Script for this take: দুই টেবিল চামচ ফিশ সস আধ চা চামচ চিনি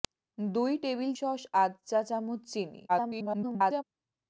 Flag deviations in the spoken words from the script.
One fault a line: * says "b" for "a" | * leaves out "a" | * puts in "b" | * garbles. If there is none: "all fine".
* leaves out "চামচ ফিশ"
* garbles